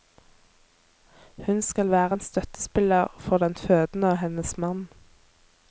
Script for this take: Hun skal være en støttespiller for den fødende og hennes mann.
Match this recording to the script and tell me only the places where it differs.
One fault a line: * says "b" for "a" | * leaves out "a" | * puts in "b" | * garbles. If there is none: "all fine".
all fine